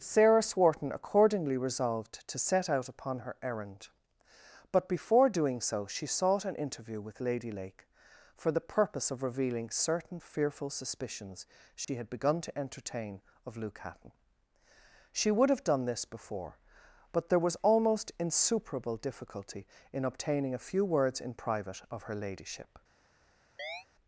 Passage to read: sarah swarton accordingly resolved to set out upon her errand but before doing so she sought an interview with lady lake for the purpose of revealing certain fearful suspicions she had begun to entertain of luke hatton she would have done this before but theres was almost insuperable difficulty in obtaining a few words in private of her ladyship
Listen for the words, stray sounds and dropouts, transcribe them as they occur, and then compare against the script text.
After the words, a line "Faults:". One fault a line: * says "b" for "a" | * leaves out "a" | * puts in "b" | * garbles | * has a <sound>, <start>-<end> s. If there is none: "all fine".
sarah swarton accordingly resolved to set out upon her errand but before doing so she sought an interview with lady lake for the purpose of revealing certain fearful suspicions she had begun to entertain of luke hatton she would have done this before but there was almost insuperable difficulty in obtaining a few words in private of her ladyship
Faults:
* has a dropout, 11.8-11.9 s
* says "there" for "theres"
* has a chirp, 23.6-23.9 s